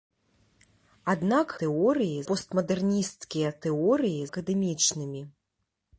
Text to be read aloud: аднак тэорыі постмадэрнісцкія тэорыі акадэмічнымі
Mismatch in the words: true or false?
false